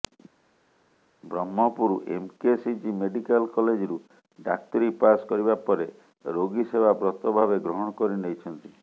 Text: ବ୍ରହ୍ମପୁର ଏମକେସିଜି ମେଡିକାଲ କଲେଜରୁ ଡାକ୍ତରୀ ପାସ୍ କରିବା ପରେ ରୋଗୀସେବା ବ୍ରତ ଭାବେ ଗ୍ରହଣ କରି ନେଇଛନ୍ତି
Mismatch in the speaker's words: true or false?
false